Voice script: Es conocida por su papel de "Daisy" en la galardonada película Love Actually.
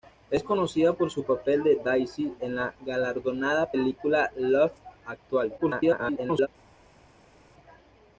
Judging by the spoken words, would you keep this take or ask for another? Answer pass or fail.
fail